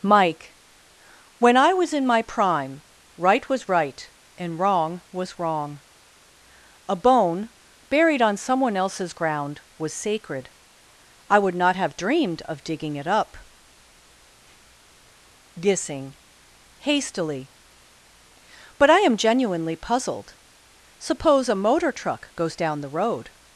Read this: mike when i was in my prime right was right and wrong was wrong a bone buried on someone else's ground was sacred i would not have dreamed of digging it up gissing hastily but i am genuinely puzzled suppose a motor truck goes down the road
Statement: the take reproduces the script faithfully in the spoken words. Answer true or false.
true